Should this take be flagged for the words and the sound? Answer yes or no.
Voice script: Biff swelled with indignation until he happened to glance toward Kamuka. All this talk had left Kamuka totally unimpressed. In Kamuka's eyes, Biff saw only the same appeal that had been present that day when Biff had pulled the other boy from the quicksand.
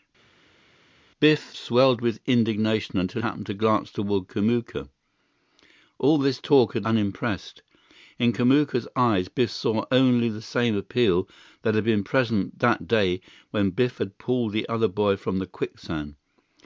yes